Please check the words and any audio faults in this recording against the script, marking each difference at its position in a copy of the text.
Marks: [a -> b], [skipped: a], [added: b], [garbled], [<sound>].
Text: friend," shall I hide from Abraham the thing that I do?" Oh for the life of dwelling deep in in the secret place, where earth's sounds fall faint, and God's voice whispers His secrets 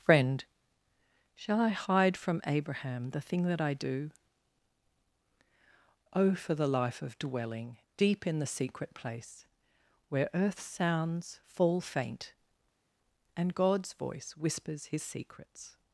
friend," shall I hide from Abraham the thing that I do?" Oh for the life of dwelling deep in [skipped: in] the secret place, where earth's sounds fall faint, and God's voice whispers His secrets